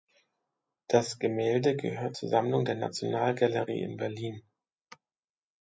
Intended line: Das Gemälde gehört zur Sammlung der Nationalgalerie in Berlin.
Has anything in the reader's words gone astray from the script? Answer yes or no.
no